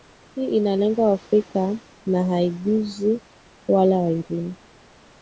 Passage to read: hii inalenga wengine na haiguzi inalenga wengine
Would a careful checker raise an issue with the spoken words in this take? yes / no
yes